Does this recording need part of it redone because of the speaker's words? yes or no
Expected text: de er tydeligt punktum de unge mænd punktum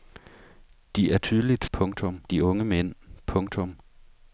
no